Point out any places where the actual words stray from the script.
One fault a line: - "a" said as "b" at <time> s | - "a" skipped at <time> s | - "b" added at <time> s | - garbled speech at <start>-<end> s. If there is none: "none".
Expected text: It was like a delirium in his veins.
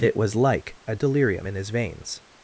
none